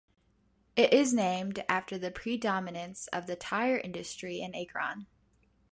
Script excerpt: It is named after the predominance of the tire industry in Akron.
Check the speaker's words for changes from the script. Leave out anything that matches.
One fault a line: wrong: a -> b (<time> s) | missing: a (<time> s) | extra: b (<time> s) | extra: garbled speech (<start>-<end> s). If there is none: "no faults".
no faults